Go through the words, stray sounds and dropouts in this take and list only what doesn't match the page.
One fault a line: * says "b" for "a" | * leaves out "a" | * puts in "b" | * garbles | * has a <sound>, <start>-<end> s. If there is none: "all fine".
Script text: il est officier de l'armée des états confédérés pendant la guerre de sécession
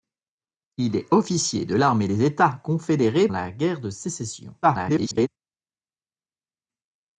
* leaves out "pendant"
* garbles